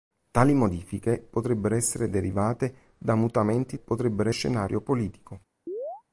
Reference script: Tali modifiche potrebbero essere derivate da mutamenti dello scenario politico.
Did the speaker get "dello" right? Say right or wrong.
wrong